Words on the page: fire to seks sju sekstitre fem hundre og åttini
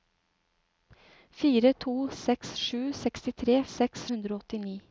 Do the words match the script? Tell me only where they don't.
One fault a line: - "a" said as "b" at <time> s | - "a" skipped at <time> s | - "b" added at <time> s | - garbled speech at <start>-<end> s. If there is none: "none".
- "fem" said as "seks" at 3.8 s